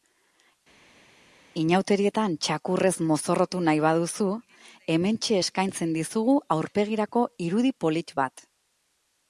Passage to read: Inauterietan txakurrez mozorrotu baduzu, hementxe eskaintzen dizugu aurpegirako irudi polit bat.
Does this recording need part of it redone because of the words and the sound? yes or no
yes